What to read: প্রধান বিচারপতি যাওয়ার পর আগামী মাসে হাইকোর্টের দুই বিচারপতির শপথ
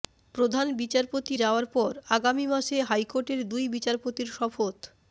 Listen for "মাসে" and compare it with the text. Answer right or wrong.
right